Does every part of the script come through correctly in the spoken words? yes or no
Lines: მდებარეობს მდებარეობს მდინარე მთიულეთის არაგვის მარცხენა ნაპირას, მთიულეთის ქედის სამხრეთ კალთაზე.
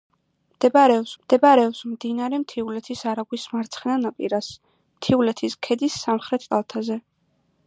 yes